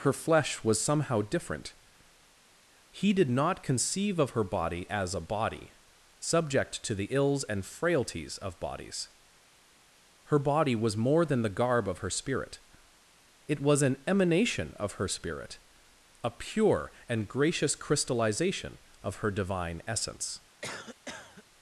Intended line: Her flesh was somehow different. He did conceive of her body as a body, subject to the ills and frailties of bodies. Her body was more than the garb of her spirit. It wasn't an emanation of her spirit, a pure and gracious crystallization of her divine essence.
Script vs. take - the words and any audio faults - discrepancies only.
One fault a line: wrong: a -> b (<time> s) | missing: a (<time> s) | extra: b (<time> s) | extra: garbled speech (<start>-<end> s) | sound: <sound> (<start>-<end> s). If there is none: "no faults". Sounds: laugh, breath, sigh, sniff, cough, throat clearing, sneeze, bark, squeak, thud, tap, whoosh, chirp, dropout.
extra: not (3.3 s)
wrong: wasn't -> was (13.6 s)
sound: cough (20.6-21.4 s)